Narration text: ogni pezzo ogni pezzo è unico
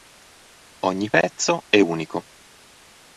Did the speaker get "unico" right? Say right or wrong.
right